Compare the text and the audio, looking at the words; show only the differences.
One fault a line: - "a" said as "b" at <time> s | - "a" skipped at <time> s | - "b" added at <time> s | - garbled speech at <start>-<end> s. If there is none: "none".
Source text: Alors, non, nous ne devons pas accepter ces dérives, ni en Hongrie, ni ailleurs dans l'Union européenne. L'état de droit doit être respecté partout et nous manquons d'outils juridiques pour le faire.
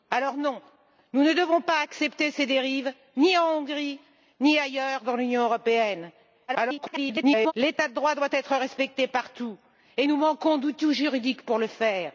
- garbled speech at 6.5-7.5 s